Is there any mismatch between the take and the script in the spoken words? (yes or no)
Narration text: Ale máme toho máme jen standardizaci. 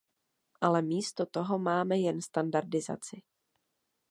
yes